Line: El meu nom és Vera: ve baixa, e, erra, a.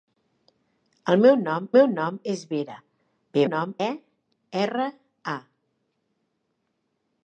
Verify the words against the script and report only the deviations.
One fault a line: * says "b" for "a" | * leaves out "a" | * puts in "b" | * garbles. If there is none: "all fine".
* puts in "meu nom"
* says "nom" for "baixa"